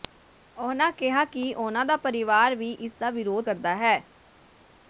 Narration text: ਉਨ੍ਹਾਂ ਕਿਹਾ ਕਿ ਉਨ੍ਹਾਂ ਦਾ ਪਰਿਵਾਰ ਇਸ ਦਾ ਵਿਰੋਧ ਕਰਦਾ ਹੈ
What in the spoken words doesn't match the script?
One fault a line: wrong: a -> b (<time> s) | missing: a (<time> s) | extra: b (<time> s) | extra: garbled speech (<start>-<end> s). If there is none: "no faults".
extra: ਵੀ (2.5 s)